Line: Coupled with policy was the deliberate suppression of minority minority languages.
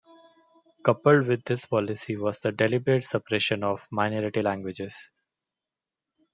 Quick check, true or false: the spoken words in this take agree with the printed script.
false